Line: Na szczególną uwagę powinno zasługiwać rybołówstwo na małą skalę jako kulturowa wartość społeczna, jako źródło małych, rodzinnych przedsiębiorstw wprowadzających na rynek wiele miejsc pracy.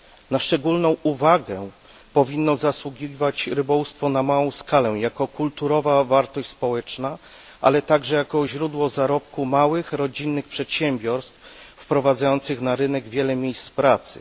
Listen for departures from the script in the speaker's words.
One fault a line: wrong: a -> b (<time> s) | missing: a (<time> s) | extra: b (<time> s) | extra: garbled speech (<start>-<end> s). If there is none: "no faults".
extra: ale także (7.6 s)
extra: zarobku (8.9 s)